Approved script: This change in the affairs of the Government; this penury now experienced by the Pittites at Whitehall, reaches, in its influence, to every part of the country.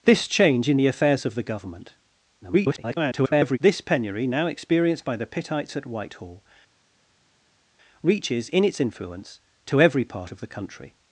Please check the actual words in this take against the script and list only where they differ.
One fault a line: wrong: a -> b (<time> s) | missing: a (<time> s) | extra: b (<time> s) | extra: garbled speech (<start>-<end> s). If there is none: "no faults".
extra: garbled speech (2.4-3.6 s)